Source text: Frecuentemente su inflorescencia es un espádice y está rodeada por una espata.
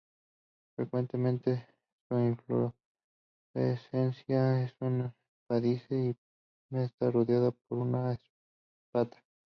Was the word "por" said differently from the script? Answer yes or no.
no